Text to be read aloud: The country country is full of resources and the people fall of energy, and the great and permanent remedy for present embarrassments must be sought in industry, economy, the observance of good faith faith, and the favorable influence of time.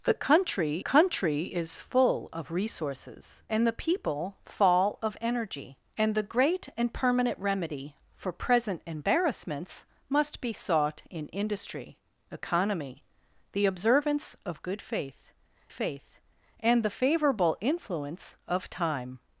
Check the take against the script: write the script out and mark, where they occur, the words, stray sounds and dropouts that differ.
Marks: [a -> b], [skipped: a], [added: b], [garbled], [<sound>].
The country country is full of resources and the people fall of energy, and the great and permanent remedy for present embarrassments must be sought in industry, economy, the observance of good faith faith, and the favorable influence of time.